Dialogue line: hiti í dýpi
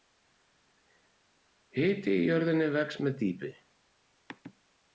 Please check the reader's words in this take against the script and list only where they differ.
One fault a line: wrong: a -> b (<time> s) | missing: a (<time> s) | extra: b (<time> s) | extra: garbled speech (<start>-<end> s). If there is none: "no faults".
extra: jörðinni vex með (2.3 s)